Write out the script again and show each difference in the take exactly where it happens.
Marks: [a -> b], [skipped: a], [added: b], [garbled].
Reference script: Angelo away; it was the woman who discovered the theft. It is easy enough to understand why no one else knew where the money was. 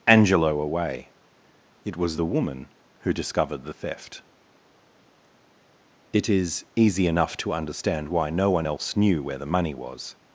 Angelo away; it was the woman who discovered the theft. It is easy enough to understand why no one else knew where the money was.